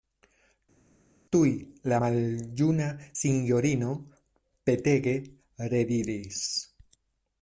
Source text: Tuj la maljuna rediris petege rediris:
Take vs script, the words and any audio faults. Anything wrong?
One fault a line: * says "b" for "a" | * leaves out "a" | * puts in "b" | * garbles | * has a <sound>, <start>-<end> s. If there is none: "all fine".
* says "sinjorino" for "rediris"